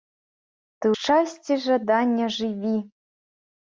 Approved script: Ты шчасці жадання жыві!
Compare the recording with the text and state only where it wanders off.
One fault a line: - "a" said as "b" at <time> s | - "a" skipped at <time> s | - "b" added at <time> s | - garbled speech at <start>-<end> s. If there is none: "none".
none